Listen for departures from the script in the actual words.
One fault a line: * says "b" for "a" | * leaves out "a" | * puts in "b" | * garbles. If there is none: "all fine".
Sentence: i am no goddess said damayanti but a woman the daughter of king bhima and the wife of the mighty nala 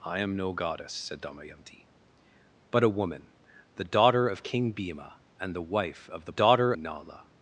* says "daughter" for "mighty"